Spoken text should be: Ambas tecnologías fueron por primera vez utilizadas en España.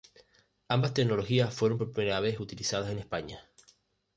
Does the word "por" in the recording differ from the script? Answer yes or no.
no